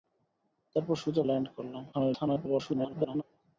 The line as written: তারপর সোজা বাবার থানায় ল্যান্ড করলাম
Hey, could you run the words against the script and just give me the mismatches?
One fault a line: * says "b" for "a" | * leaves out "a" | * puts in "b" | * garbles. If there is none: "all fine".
* leaves out "বাবার থানায়"
* garbles